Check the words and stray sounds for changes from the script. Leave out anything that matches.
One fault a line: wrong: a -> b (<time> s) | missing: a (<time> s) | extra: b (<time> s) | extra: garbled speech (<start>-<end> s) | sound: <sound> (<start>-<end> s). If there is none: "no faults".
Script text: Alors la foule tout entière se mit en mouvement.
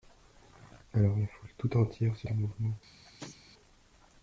missing: mit (2.3 s)
sound: sneeze (3.0-3.4 s)